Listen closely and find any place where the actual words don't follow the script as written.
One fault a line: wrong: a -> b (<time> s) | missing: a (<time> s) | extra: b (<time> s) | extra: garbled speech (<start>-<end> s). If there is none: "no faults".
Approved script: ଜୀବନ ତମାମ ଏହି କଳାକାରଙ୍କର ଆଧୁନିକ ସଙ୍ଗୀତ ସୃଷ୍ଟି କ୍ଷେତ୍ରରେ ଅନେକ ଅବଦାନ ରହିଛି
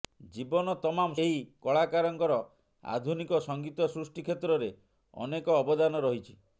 no faults